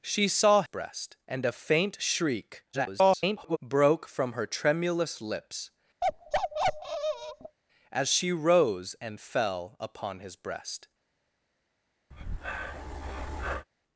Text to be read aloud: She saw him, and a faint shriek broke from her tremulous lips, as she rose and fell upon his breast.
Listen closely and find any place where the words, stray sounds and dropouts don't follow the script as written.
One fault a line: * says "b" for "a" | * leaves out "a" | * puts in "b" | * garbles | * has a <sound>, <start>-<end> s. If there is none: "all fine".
* says "breast" for "him"
* garbles
* has a bark, 6.0-7.6 s
* has a breath, 12.1-13.7 s